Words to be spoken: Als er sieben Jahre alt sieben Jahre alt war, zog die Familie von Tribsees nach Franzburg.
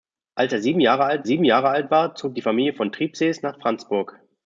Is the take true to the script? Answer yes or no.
yes